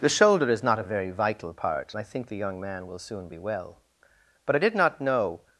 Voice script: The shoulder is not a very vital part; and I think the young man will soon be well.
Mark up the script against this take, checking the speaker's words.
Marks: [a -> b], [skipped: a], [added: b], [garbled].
The shoulder is not a very vital part; and I think the young man will soon be well. [added: But I did not know]